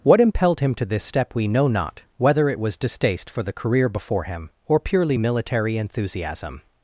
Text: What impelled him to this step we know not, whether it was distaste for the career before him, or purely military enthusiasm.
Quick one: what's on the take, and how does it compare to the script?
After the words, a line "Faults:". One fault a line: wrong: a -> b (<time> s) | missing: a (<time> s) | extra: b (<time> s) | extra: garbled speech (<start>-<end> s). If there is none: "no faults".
What impelled him to this step we know not, whether it was distaste for the career before him, or purely military enthusiasm.
Faults:
no faults